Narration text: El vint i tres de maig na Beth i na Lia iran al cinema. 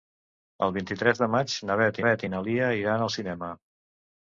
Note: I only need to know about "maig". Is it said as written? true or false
true